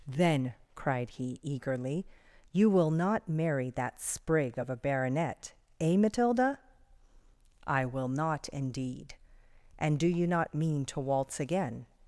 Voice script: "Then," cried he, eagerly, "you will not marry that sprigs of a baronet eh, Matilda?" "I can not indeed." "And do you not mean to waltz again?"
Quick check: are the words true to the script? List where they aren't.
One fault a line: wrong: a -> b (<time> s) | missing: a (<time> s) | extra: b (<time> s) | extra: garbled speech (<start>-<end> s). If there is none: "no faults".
wrong: sprigs -> sprig (4.0 s)
wrong: can -> will (7.8 s)